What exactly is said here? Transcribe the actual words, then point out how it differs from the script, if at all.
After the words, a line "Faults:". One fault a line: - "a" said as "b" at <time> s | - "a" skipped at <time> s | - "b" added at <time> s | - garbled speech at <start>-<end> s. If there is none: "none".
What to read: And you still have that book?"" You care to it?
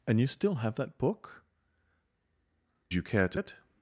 And you still have that book?"" You care to it?
Faults:
none